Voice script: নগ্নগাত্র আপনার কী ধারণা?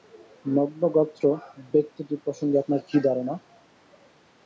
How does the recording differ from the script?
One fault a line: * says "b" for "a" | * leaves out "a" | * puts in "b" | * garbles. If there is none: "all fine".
* puts in "ব্যক্তিটি প্রসঙ্গে"